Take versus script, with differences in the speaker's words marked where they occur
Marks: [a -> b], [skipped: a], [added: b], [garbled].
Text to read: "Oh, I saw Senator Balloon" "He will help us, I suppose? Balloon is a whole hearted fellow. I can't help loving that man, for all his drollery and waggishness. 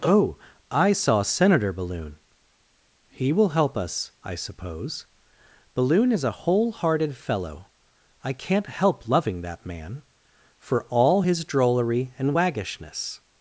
"Oh, I saw Senator Balloon" "He will help us, I suppose? Balloon is a whole hearted fellow. I can't help loving that man, for all his drollery and waggishness.